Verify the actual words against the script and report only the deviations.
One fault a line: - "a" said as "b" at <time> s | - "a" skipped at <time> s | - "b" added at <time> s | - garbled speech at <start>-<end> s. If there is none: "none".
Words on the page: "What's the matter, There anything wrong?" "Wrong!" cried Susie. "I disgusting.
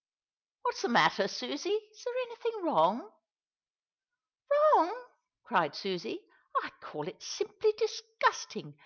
- "Susie Is" added at 1.3 s
- "call it simply" added at 6.8 s